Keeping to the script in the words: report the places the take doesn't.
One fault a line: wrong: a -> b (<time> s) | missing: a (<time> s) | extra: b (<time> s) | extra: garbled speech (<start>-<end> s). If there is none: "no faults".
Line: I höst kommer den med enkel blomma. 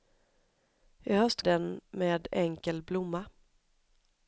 missing: kommer (1.4 s)